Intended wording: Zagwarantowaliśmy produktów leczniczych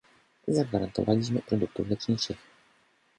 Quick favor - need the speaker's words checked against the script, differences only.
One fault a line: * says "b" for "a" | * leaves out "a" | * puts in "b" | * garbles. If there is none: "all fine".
all fine